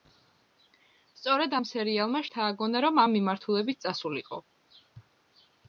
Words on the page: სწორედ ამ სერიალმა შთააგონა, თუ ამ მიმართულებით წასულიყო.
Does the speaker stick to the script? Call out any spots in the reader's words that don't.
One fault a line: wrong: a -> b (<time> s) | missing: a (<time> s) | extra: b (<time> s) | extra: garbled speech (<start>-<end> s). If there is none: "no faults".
wrong: თუ -> რომ (2.9 s)